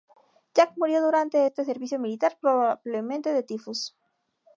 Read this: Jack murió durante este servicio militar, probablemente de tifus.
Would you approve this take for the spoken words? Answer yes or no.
yes